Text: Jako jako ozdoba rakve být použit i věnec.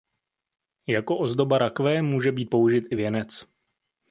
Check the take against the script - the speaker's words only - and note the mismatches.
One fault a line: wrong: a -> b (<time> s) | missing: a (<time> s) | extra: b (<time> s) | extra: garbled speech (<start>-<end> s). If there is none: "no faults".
missing: jako (1.2 s)
extra: může (2.0 s)